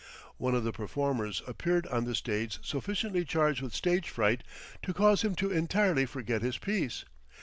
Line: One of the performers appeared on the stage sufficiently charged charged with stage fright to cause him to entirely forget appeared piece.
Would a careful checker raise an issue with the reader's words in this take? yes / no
yes